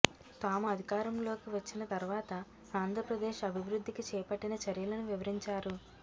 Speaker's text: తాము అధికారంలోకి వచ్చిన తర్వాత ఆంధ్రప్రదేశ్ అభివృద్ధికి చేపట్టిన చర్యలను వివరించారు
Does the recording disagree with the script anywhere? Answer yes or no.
no